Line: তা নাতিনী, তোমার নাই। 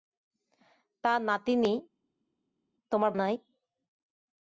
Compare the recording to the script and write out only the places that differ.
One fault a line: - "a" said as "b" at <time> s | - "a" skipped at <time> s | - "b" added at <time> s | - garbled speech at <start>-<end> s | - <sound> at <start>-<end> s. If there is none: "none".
none